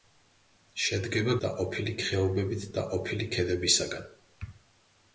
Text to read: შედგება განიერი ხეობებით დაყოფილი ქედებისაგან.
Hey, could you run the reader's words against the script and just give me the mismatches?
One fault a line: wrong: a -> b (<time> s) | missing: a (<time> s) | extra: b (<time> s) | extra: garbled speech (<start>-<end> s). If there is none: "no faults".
wrong: განიერი -> დაყოფილი (1.5 s)